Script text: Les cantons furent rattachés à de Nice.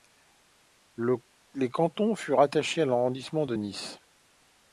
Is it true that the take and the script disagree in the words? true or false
true